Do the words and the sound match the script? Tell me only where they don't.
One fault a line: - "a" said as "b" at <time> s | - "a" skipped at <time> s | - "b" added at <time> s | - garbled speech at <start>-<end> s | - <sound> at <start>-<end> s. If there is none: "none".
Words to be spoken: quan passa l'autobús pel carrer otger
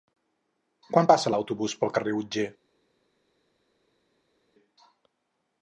none